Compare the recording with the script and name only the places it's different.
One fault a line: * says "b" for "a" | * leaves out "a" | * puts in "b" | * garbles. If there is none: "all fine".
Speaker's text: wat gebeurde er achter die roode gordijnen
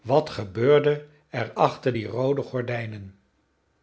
all fine